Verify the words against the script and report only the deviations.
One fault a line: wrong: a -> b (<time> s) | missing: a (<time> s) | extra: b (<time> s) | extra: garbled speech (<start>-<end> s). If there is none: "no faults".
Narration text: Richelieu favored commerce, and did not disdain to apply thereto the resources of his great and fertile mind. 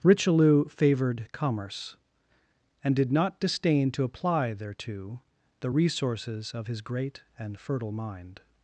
no faults